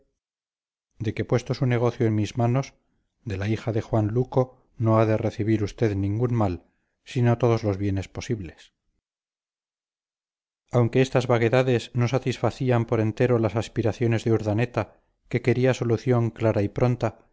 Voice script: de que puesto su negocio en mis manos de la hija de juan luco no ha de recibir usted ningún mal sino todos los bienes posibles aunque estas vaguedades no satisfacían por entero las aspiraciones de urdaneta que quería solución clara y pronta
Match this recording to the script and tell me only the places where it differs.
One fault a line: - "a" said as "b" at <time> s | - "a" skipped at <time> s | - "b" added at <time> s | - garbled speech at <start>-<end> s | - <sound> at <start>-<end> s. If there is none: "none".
none